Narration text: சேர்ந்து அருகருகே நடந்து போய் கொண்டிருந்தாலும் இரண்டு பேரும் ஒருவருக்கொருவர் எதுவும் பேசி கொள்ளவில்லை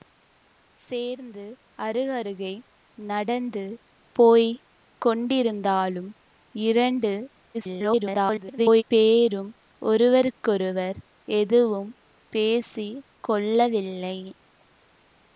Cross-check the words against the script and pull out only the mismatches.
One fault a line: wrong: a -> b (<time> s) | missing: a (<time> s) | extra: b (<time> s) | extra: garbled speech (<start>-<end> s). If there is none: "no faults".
extra: garbled speech (7.5-8.8 s)